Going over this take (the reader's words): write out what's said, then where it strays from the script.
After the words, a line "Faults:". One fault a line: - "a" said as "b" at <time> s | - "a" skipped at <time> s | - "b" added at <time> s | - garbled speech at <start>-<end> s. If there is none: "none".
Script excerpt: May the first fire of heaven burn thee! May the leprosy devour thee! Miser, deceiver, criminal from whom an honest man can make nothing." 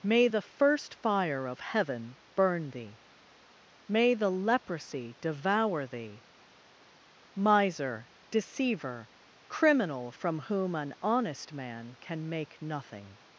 May the first fire of heaven burn thee! May the leprosy devour thee! Miser, deceiver, criminal from whom an honest man can make nothing."
Faults:
none